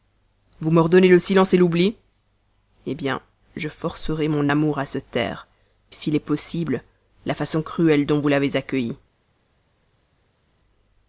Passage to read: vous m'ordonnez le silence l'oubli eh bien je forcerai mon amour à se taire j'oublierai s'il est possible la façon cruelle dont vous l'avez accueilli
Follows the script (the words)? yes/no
no